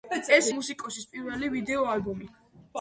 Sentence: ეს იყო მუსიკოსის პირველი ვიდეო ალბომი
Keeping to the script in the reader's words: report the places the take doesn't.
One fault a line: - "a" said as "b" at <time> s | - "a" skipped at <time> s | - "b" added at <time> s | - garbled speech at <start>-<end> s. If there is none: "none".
- "იყო" skipped at 0.5 s